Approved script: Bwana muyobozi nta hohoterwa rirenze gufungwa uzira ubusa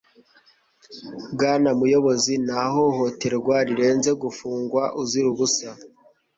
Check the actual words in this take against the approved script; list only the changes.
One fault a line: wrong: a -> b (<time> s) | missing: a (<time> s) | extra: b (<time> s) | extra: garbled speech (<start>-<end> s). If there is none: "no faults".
no faults